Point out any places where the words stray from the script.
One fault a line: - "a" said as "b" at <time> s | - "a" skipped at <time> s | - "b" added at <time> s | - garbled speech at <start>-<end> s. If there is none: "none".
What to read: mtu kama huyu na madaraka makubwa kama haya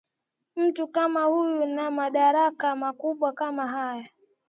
none